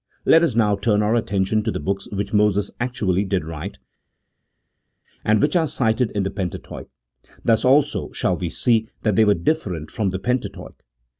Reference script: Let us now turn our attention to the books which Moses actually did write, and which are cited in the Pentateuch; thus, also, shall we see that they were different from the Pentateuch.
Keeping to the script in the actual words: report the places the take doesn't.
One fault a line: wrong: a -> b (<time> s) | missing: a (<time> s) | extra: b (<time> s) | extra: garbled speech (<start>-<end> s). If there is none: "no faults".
no faults